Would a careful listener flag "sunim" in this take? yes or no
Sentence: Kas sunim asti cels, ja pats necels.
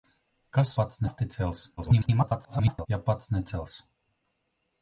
yes